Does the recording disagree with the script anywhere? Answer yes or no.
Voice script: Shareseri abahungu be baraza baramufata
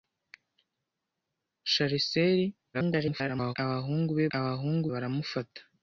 yes